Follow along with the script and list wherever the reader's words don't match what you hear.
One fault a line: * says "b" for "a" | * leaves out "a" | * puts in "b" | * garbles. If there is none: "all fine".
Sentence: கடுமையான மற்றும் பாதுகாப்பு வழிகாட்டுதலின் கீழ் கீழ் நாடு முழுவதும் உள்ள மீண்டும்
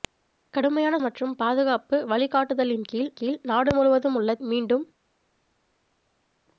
all fine